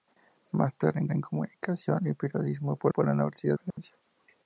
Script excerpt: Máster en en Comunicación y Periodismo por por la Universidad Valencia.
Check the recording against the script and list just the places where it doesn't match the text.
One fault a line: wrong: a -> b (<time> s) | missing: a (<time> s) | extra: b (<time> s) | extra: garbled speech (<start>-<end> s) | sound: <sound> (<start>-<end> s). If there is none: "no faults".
sound: dropout (3.7-3.8 s)